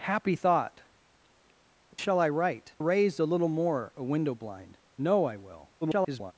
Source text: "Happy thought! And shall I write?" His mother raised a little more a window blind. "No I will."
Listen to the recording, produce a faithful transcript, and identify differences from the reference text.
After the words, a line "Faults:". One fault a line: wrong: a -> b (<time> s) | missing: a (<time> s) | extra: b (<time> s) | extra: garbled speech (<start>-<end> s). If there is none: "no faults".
"Happy thought! Shall I write?" Raised a little more a window blind. "No I will." [garbled]
Faults:
missing: And (0.8 s)
missing: His mother (2.7 s)
extra: garbled speech (5.8-6.3 s)